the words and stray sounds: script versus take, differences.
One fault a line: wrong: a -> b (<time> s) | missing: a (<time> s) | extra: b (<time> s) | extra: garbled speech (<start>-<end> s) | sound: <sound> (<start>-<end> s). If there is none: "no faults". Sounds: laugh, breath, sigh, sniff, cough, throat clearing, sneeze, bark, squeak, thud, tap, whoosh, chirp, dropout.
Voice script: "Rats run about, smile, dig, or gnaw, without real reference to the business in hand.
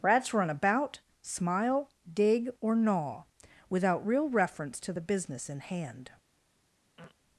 sound: throat clearing (7.0-7.2 s)